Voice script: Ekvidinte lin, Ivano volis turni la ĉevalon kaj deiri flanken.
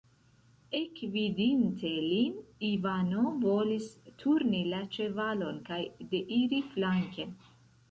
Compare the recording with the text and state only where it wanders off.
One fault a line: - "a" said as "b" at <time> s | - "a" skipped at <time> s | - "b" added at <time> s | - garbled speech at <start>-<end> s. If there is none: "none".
none